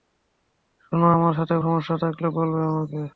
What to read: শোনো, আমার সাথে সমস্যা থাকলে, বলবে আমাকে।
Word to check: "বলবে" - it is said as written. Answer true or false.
true